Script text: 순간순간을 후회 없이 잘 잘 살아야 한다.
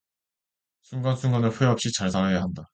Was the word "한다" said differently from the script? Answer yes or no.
no